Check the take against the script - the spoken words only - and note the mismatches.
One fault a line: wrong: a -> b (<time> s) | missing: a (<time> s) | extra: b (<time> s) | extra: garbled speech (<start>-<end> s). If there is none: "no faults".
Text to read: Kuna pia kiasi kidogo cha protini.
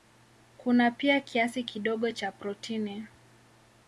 no faults